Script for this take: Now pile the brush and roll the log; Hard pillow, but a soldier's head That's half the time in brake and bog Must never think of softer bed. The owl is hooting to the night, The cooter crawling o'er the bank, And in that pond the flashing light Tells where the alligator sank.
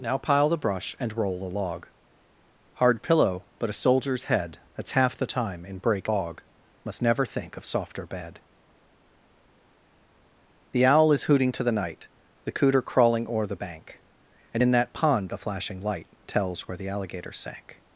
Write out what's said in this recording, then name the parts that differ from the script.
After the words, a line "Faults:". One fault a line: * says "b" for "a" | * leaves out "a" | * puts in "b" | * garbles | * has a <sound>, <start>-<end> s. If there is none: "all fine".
Now pile the brush and roll the log; Hard pillow, but a soldier's head That's half the time in brake bog Must never think of softer bed. The owl is hooting to the night, The cooter crawling o'er the bank, And in that pond the flashing light Tells where the alligator sank.
Faults:
* leaves out "and"